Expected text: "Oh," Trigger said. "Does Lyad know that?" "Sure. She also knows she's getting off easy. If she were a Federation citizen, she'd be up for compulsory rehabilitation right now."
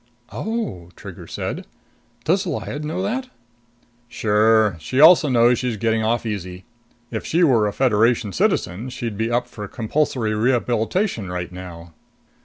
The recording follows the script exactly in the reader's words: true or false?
true